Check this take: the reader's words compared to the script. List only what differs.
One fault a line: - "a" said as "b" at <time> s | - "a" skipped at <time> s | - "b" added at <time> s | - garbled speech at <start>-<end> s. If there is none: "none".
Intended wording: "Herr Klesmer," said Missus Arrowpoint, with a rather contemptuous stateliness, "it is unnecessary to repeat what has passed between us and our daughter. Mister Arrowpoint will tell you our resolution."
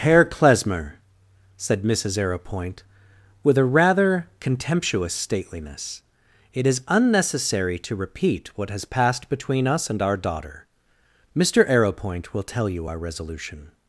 none